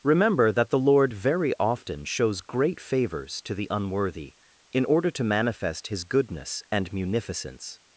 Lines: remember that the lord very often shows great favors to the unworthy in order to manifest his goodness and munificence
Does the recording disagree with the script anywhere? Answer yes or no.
no